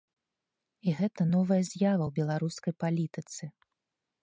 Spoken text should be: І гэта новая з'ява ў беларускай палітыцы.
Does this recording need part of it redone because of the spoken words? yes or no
no